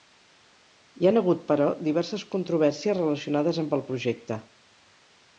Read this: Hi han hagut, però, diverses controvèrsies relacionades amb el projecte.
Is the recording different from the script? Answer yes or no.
no